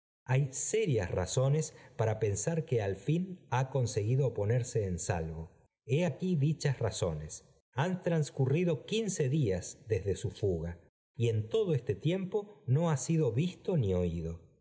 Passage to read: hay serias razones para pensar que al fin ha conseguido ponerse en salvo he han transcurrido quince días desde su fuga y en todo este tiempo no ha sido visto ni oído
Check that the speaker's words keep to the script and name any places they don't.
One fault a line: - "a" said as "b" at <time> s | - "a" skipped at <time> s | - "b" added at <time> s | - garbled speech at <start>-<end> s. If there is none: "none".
- "aquí dichas razones" added at 6.0 s